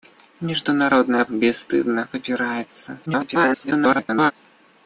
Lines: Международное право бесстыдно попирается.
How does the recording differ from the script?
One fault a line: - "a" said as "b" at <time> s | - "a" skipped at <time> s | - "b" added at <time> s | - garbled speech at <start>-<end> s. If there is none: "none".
- "право" skipped at 1.2 s
- garbled speech at 3.1-4.3 s